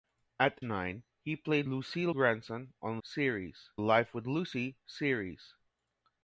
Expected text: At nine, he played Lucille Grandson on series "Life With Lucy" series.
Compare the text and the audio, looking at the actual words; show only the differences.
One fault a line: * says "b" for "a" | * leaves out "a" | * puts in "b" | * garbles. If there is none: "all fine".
all fine